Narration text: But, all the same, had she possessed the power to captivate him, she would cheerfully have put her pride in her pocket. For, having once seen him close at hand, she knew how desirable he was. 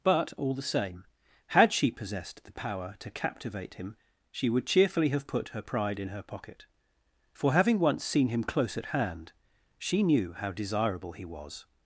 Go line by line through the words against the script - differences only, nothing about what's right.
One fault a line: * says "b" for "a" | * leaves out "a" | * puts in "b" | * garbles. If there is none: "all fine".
all fine